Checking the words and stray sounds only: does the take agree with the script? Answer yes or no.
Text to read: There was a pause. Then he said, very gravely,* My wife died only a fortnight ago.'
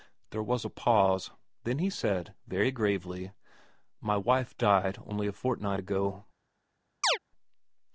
no